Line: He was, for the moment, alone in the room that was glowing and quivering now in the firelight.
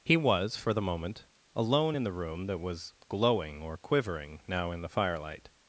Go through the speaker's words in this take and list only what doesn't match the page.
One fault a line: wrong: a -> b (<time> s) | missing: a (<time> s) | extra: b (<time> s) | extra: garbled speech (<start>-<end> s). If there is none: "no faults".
wrong: and -> or (3.6 s)